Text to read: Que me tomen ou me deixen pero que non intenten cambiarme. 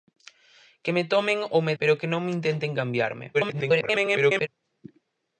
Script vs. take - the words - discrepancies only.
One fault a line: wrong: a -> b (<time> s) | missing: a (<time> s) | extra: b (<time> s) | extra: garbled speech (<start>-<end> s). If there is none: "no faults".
missing: deixen (1.8 s)
extra: garbled speech (3.3-4.5 s)